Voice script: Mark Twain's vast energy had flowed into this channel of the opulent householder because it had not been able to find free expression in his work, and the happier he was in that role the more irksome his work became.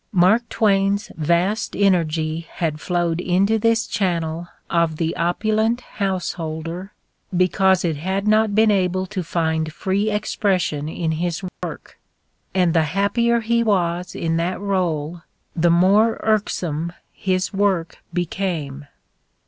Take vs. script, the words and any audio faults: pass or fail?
fail